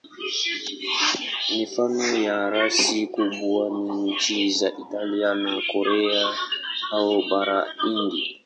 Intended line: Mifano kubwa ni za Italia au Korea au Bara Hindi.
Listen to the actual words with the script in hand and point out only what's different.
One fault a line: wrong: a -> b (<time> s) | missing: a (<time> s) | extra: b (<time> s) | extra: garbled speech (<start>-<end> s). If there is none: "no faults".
extra: ya rasi (2.3 s)
extra: nchi (4.1 s)
wrong: au -> na (5.3 s)